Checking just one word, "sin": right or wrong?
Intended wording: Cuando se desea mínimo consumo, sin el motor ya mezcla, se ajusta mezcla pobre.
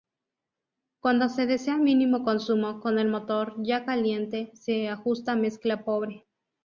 wrong